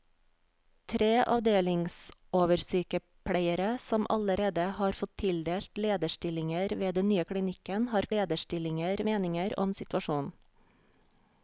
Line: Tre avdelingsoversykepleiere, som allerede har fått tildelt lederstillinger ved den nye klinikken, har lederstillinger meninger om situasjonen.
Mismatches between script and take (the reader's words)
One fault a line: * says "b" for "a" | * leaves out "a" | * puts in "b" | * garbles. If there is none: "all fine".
all fine